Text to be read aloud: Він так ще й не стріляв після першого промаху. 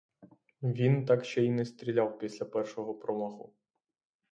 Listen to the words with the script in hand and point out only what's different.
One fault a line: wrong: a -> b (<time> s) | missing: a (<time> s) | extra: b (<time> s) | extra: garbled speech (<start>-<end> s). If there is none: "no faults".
no faults